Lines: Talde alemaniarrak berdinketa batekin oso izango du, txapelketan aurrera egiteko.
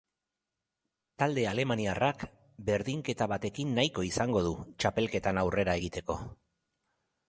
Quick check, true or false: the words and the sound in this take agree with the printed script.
false